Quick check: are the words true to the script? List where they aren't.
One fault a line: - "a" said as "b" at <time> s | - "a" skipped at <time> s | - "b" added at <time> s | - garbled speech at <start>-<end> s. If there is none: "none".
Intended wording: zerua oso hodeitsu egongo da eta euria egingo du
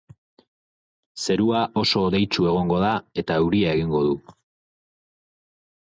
none